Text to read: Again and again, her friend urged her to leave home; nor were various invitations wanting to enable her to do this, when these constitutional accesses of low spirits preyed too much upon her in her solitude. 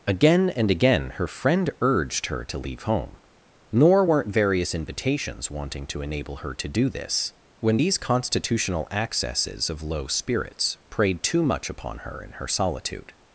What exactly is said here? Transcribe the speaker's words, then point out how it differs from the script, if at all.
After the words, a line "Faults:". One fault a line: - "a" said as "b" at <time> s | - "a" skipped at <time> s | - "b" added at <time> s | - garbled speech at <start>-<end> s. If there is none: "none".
Again and again, her friend urged her to leave home; nor weren't various invitations wanting to enable her to do this, when these constitutional accesses of low spirits preyed too much upon her in her solitude.
Faults:
- "were" said as "weren't" at 4.0 s